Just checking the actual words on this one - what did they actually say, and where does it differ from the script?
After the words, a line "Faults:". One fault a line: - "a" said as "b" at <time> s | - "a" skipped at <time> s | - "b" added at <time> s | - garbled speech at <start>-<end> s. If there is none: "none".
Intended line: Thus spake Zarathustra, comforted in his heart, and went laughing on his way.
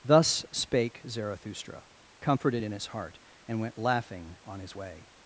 Thus spake Zarathustra, comforted in his heart, and went laughing on his way.
Faults:
none